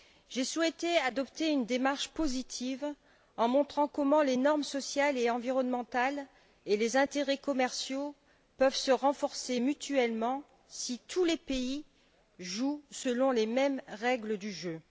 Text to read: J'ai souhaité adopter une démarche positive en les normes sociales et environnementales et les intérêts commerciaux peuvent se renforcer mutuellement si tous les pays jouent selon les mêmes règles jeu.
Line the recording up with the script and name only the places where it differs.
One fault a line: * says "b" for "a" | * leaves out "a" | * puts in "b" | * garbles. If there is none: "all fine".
* puts in "montrant comment"
* puts in "du"